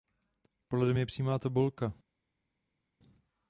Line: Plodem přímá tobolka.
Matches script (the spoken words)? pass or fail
fail